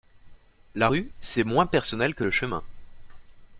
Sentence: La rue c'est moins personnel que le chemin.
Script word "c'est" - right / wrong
right